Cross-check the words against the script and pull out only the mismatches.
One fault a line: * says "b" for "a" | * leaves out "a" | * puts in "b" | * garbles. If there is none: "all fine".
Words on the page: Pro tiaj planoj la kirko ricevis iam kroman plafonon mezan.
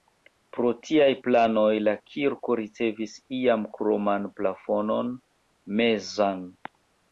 all fine